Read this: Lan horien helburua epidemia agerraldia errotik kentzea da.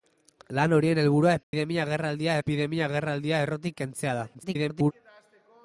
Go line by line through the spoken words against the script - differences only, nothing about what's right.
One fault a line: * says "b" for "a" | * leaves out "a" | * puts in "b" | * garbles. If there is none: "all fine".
* puts in "epidemia agerraldia"
* garbles